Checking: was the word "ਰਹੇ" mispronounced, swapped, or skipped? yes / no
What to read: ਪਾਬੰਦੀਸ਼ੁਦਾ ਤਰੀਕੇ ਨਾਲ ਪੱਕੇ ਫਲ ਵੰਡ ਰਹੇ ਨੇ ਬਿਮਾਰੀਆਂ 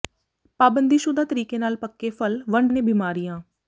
yes